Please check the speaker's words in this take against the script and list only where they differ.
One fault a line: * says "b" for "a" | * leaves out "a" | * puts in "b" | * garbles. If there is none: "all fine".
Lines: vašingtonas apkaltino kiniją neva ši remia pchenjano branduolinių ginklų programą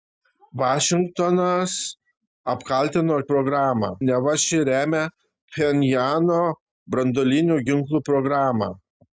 * says "programą" for "kiniją"